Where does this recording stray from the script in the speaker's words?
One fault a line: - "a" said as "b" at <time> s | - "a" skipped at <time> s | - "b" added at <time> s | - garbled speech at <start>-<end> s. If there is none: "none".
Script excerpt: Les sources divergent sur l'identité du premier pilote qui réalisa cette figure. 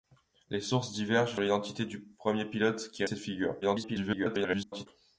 - "sur" skipped at 1.4 s
- "réalisa" skipped at 3.0 s
- garbled speech at 3.6-4.9 s